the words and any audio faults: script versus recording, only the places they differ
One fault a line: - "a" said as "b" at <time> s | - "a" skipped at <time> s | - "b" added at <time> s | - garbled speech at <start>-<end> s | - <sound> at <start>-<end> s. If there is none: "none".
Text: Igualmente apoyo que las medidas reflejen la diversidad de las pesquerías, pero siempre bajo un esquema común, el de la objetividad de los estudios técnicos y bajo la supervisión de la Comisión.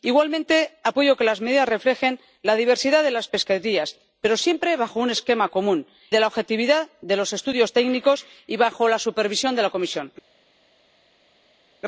- "el" skipped at 5.9 s